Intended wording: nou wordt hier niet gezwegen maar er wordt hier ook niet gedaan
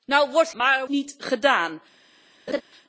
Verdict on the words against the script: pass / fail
fail